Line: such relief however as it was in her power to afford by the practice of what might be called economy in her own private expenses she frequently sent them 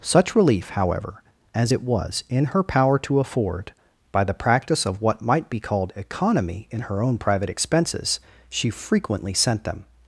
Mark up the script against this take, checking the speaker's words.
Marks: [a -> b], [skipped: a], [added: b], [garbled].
such relief however as it was in her power to afford by the practice of what might be called economy in her own private expenses she frequently sent them